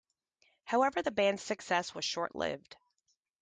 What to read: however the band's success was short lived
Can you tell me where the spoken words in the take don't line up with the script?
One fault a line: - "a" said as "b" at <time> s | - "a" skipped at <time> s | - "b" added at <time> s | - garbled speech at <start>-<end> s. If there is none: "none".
none